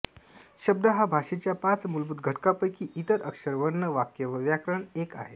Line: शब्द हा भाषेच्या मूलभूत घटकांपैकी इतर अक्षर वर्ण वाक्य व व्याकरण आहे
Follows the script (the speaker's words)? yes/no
no